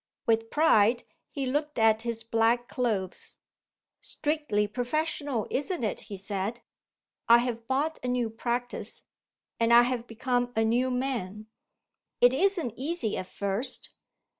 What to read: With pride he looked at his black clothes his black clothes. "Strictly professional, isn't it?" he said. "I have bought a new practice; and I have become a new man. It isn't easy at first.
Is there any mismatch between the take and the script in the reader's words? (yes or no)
yes